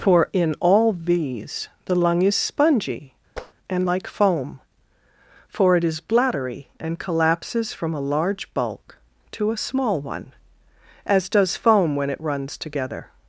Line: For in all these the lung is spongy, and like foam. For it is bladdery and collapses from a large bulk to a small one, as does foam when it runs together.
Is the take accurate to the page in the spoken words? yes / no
yes